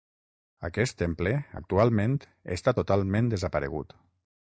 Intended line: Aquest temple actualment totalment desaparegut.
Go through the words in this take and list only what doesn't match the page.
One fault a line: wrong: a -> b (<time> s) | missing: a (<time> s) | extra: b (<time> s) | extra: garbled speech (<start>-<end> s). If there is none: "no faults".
extra: està (2.6 s)